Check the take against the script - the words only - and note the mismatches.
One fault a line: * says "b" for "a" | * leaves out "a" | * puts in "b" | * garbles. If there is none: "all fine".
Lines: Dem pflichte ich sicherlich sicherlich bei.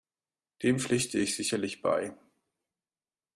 * leaves out "sicherlich"